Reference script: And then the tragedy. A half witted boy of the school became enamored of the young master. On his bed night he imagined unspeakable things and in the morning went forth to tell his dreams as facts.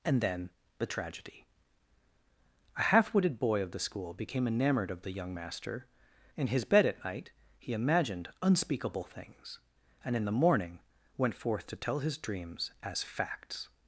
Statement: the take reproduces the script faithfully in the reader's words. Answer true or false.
false